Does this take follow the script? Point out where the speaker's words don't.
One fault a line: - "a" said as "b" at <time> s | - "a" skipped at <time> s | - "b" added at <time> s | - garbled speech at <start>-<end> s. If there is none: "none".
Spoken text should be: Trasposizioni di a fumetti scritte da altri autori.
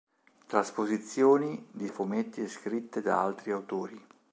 none